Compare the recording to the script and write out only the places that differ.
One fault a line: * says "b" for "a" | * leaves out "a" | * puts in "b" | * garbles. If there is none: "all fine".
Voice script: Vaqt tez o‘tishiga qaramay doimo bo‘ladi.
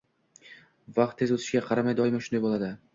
* puts in "shunday"